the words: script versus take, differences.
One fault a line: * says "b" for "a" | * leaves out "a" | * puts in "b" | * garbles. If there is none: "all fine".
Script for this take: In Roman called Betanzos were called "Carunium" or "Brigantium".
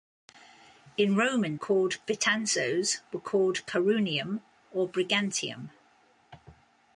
all fine